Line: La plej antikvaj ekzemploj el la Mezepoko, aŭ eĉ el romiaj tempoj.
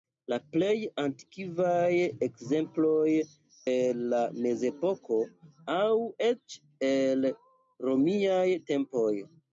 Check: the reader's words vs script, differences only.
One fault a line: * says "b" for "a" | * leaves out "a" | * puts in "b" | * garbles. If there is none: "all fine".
all fine